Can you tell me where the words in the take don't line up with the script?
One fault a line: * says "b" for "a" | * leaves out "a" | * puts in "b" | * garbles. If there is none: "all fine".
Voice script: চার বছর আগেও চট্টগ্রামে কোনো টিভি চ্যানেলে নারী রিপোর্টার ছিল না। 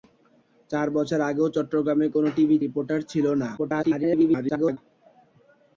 * leaves out "চ্যানেলে নারী"
* garbles